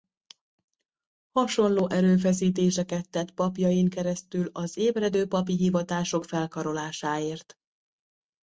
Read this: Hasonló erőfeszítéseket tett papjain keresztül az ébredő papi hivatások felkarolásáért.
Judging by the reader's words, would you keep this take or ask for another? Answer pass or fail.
pass